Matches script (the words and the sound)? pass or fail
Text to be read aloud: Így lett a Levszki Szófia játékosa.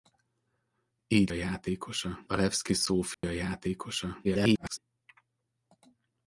fail